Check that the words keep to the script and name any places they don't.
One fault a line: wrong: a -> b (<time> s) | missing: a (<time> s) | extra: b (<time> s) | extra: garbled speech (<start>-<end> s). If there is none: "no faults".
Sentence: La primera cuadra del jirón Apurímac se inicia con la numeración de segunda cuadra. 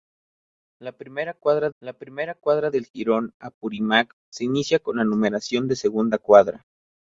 extra: la primera cuadra (1.8 s)